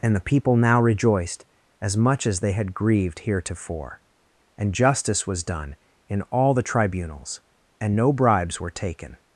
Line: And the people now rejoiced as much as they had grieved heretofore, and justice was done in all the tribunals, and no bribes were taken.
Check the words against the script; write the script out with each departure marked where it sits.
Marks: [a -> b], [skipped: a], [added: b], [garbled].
And the people now rejoiced as much as they had grieved heretofore, and justice was done in all the tribunals, and no bribes were taken.